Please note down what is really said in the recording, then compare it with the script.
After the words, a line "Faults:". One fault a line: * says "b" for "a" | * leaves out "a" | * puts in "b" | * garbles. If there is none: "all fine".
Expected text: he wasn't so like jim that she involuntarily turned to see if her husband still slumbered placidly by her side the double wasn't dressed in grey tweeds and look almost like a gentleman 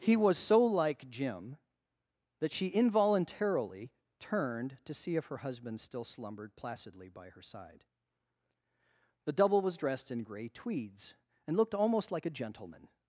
he was so like jim that she involuntarily turned to see if her husband still slumbered placidly by her side the double was dressed in grey tweeds and looked almost like a gentleman
Faults:
* says "was" for "wasn't"
* says "was" for "wasn't"
* says "looked" for "look"